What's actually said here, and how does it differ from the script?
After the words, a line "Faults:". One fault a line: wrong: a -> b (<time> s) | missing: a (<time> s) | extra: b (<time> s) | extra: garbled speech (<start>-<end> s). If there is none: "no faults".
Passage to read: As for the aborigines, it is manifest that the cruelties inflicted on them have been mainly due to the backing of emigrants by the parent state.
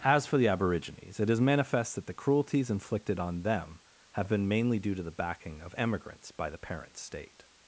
As for the aborigines, it is manifest that the cruelties inflicted on them have been mainly due to the backing of emigrants by the parent state.
Faults:
no faults